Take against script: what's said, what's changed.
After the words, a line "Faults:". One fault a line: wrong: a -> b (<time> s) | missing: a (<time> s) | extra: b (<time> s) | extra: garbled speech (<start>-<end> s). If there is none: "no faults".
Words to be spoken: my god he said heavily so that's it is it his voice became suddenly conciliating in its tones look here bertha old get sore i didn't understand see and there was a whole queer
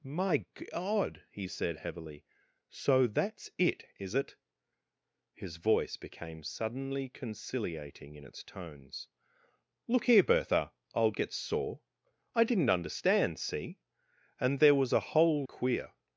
my god he said heavily so that's it is it his voice became suddenly conciliating in its tones look here bertha old get sore i didn't understand see and there was a whole queer
Faults:
no faults